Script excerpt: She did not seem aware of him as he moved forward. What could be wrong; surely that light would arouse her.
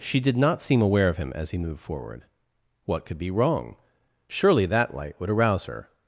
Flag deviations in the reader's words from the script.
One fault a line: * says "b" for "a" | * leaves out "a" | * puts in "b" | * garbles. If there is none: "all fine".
all fine